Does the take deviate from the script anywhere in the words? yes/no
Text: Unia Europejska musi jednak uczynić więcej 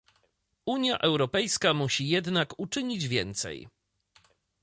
no